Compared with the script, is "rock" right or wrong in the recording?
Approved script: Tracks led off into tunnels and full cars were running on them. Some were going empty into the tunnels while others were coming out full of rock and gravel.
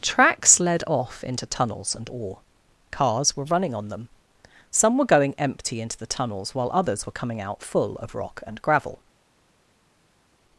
right